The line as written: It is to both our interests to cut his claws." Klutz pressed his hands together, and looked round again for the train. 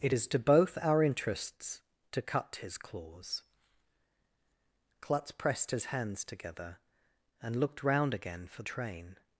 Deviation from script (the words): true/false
true